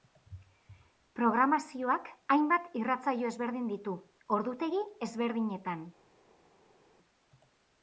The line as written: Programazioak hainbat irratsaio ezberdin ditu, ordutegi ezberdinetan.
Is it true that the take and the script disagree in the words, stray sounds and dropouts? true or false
false